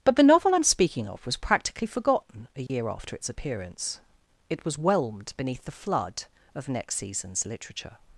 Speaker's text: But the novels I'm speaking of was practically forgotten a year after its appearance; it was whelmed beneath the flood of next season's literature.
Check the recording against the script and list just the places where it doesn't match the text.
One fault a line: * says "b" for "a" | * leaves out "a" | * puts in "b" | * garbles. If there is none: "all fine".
* says "novel" for "novels"